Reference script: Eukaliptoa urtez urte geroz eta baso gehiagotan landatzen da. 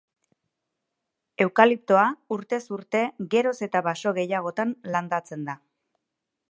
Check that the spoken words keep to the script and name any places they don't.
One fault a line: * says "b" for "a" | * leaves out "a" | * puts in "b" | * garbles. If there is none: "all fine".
all fine